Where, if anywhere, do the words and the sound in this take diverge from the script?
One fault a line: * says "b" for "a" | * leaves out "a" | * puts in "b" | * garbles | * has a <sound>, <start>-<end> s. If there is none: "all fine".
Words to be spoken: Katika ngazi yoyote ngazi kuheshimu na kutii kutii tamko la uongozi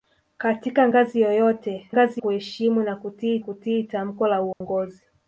* has a dropout, 4.5-4.6 s